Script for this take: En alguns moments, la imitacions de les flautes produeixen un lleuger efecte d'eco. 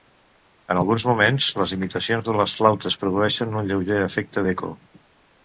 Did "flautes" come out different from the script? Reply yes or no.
no